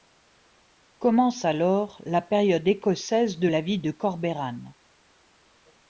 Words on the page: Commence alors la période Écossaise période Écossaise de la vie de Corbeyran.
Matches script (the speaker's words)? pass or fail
fail